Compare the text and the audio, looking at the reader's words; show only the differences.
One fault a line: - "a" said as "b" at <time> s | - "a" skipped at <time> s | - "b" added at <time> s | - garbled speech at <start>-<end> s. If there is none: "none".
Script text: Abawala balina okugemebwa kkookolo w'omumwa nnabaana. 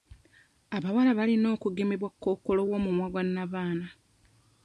- "gwa" added at 3.1 s